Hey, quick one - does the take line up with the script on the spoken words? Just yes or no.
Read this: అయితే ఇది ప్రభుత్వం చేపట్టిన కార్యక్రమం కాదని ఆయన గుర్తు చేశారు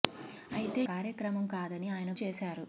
no